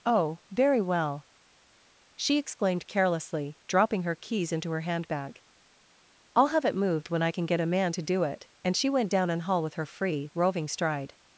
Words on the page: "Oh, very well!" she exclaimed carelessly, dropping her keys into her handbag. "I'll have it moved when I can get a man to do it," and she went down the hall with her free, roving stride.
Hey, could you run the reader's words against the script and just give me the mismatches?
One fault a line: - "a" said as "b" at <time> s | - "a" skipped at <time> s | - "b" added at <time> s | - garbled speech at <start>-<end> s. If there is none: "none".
- "the" said as "an" at 9.3 s